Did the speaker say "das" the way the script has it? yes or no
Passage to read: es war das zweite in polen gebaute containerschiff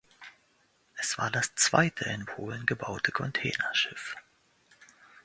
yes